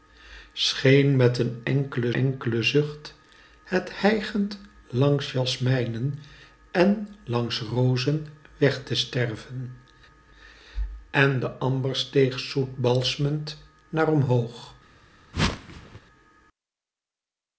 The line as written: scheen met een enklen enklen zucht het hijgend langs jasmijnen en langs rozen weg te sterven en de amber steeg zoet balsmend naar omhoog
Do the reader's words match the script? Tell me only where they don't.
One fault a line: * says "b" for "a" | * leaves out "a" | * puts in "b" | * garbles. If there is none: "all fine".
all fine